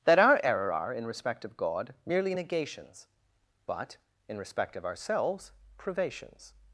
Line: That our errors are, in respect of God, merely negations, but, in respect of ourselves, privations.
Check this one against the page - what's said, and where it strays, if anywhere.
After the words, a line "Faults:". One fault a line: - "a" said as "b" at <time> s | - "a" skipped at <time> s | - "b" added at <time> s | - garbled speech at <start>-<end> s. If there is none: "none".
That our error are, in respect of God, merely negations, but, in respect of ourselves, privations.
Faults:
- "errors" said as "error" at 0.4 s